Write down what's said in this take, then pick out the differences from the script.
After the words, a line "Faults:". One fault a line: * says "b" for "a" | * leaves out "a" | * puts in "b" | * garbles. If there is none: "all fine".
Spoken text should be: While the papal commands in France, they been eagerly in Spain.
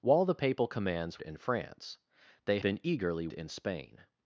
While the papal commands in France, they been eagerly in Spain.
Faults:
all fine